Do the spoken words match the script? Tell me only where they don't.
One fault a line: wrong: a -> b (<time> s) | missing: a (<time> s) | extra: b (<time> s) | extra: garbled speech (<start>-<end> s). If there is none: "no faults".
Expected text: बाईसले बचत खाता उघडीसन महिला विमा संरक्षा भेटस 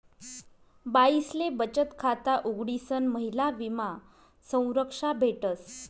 no faults